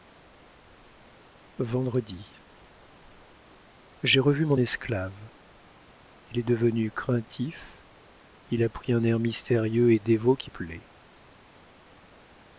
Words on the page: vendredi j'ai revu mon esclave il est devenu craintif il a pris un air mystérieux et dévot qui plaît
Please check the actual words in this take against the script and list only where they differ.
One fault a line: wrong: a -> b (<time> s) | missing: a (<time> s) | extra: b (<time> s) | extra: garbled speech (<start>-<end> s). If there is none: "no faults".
no faults